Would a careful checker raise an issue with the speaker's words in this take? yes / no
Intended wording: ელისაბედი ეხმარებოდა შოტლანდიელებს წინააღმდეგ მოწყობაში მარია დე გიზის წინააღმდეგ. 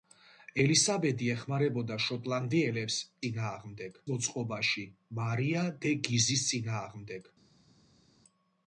no